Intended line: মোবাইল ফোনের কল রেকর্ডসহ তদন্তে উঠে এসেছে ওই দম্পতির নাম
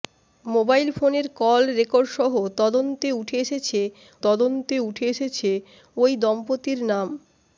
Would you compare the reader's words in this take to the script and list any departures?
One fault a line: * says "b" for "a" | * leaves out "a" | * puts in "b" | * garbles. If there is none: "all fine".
* puts in "তদন্তে উঠে এসেছে"